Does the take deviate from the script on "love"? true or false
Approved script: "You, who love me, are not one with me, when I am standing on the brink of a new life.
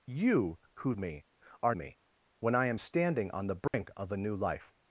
true